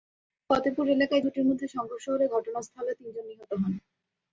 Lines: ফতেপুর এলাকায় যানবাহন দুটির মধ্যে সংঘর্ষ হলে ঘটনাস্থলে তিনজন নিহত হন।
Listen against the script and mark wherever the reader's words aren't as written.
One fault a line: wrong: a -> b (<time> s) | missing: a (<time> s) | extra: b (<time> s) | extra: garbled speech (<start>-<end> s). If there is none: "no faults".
missing: যানবাহন (1.2 s)